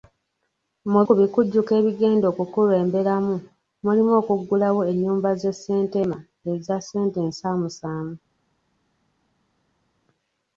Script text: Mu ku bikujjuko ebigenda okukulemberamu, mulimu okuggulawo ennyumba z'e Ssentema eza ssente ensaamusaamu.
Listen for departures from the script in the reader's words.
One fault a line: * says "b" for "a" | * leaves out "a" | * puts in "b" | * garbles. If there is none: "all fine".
all fine